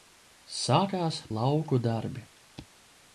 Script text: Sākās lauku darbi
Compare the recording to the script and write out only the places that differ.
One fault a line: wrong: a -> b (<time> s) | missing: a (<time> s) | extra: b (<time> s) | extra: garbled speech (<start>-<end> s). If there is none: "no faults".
no faults